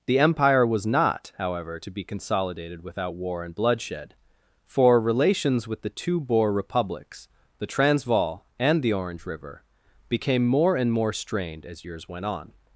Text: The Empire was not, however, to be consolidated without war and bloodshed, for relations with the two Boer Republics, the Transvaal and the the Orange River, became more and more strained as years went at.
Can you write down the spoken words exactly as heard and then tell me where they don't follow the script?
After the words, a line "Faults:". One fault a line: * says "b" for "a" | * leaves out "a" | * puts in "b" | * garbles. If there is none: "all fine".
The Empire was not, however, to be consolidated without war and bloodshed, for relations with the two Boer Republics, the Transvaal and the Orange River, became more and more strained as years went on.
Faults:
* leaves out "the"
* says "on" for "at"